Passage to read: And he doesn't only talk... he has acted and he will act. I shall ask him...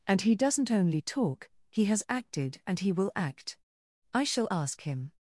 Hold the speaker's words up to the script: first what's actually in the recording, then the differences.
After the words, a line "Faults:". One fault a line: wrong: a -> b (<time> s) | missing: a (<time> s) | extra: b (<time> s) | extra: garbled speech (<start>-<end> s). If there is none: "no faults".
And he doesn't only talk... he has acted and he will act. I shall ask him...
Faults:
no faults